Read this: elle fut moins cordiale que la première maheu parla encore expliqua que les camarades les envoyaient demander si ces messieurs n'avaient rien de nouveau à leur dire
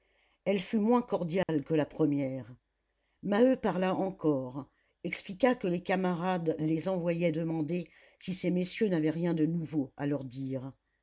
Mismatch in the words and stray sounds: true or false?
true